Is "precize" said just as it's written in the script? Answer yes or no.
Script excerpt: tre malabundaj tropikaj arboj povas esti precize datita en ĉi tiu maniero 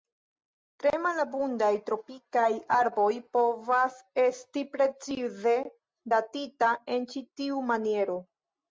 yes